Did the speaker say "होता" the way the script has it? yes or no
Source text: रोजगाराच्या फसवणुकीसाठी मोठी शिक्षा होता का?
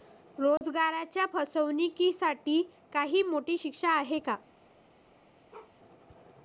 no